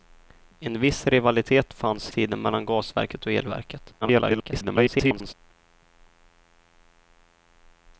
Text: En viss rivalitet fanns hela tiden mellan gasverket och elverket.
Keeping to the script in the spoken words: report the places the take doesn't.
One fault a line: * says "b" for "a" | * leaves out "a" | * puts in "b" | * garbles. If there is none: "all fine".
* leaves out "hela"
* garbles